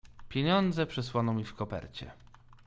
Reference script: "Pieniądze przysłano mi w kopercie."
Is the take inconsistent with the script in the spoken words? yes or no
no